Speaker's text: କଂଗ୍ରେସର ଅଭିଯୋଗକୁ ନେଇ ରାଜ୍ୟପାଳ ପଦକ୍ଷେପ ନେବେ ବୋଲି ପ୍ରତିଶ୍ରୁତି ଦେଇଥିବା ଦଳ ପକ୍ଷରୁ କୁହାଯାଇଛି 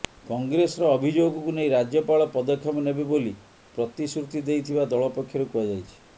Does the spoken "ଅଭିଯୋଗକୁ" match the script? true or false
true